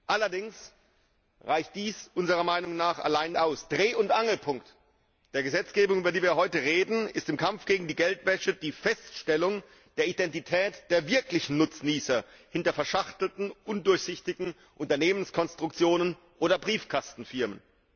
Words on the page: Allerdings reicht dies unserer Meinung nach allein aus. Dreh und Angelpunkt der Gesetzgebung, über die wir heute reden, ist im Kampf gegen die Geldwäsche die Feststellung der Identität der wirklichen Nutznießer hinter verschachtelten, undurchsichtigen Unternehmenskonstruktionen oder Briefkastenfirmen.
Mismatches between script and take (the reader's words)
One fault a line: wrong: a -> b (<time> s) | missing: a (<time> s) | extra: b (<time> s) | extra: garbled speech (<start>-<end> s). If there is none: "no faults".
no faults